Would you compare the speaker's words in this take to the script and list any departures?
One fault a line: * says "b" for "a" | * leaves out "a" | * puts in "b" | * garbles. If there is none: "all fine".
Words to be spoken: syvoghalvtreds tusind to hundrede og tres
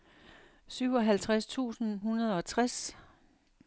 * leaves out "to"